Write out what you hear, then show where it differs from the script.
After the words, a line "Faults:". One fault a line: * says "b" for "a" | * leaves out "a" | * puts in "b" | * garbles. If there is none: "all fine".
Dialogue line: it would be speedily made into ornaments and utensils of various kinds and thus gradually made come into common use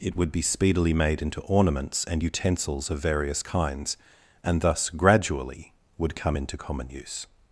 it would be speedily made into ornaments and utensils of various kinds and thus gradually would come into common use
Faults:
* says "would" for "made"